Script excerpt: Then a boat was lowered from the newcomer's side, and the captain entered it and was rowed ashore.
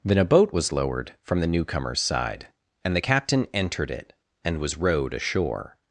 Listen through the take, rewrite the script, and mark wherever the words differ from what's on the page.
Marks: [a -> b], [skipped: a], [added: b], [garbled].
Then a boat was lowered from the newcomer's side, and the captain entered it and was rowed ashore.